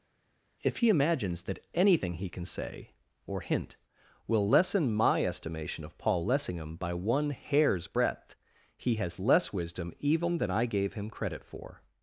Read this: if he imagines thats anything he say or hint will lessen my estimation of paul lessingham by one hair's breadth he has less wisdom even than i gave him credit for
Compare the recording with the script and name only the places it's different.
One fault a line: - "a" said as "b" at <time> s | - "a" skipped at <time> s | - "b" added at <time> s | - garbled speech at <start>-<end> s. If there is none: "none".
- "thats" said as "that" at 1.4 s
- "can" added at 2.3 s